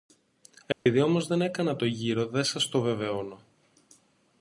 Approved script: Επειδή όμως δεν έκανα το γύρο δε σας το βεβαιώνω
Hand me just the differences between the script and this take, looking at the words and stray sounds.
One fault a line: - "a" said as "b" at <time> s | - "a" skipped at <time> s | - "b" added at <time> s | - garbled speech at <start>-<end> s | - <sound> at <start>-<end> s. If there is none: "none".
- dropout at 0.7-0.9 s